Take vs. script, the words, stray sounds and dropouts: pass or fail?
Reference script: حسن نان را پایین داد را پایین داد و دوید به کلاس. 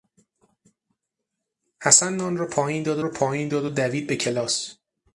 pass